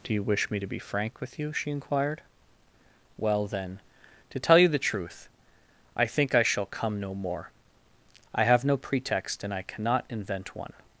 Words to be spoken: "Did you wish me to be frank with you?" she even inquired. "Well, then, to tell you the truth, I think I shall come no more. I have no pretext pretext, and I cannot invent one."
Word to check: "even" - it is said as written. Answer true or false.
false